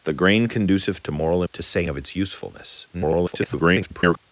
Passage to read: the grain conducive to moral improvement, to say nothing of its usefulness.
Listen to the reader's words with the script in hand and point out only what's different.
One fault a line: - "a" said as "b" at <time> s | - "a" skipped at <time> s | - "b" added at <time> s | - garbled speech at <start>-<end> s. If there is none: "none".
- "improvement" skipped at 1.4 s
- "nothing" skipped at 1.9 s
- garbled speech at 2.9-4.2 s